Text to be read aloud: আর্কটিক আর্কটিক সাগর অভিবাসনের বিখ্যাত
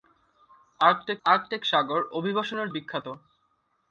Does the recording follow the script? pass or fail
pass